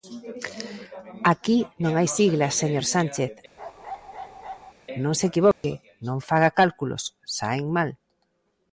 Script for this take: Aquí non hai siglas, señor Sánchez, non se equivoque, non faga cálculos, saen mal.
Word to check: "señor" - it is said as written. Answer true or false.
true